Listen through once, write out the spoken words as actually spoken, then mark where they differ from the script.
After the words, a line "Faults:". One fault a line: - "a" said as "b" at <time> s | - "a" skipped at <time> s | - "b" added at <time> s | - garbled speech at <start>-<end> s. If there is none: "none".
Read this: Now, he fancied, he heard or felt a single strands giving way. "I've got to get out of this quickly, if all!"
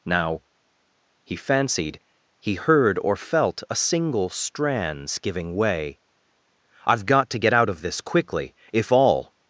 Now, he fancied, he heard or felt a single strands giving way. "I've got to get out of this quickly, if all!"
Faults:
none